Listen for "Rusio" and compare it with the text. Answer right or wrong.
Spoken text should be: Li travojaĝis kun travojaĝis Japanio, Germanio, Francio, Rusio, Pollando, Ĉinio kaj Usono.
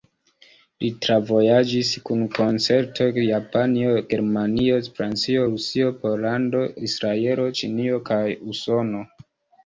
right